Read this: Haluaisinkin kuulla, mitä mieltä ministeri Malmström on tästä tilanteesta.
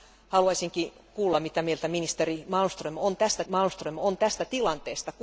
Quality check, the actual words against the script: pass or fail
fail